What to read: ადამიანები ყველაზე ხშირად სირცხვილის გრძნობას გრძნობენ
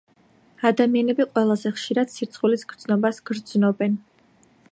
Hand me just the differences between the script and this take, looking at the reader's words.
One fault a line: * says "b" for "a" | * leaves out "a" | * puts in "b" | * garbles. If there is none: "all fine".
all fine